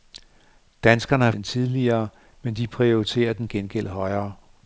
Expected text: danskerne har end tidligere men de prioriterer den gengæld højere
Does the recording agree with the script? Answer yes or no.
yes